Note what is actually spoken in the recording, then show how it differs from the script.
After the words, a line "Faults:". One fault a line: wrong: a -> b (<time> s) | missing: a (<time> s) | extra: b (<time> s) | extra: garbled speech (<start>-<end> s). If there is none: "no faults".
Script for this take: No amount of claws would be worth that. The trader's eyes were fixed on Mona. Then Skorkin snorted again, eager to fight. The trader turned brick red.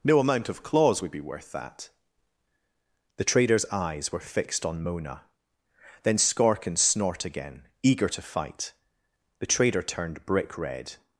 No amount of claws would be worth that. The trader's eyes were fixed on Mona. Then Skorkin snort again, eager to fight. The trader turned brick red.
Faults:
wrong: snorted -> snort (6.8 s)